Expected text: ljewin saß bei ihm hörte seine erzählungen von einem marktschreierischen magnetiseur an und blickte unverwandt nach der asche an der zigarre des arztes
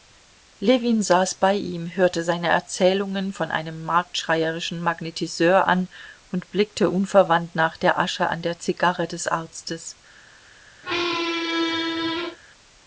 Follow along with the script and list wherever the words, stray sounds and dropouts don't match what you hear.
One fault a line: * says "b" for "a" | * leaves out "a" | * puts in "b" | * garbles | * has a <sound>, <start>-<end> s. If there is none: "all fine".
* has a squeak, 10.8-12.4 s